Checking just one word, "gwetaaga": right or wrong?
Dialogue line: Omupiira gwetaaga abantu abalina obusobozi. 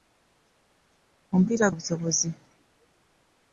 wrong